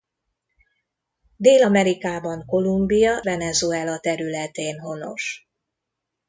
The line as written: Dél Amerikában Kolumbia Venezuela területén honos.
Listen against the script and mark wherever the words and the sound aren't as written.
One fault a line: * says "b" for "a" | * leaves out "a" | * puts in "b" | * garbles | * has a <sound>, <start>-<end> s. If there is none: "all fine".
all fine